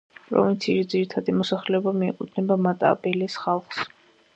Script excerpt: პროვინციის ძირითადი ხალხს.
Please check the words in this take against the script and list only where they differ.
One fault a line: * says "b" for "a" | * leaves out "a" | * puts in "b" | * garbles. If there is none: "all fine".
* puts in "მოსახლეობა მიეკუთვნება მატაბელეს"